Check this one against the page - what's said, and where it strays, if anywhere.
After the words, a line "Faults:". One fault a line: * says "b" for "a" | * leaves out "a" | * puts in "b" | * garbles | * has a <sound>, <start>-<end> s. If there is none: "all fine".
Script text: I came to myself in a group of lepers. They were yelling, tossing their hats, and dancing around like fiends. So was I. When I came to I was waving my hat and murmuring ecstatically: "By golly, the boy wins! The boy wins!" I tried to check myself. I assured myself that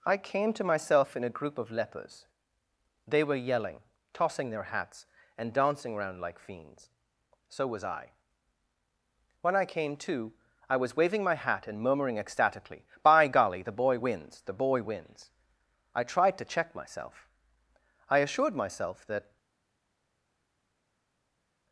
I came to myself in a group of lepers. They were yelling, tossing their hats, and dancing around like fiends. So was I. When I came to I was waving my hat and murmuring ecstatically: "By golly, the boy wins! The boy wins!" I tried to check myself. I assured myself that
Faults:
all fine